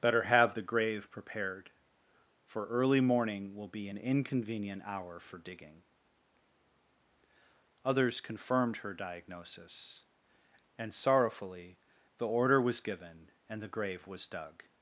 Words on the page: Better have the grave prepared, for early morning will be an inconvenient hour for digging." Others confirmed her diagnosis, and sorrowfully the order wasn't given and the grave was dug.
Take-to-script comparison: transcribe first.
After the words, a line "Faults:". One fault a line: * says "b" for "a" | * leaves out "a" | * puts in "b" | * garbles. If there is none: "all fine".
Better have the grave prepared, for early morning will be an inconvenient hour for digging." Others confirmed her diagnosis, and sorrowfully the order was given and the grave was dug.
Faults:
* says "was" for "wasn't"